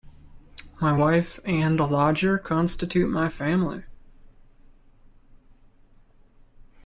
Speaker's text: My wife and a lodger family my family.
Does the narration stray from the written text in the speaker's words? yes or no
yes